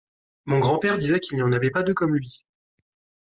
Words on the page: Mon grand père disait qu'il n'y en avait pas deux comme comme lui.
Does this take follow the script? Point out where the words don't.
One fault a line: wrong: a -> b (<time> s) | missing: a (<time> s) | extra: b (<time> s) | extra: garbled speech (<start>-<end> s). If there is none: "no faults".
missing: comme (2.1 s)